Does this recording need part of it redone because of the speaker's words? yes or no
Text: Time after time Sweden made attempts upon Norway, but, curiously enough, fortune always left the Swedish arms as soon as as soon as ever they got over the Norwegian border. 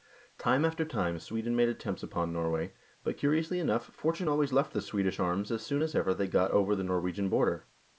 yes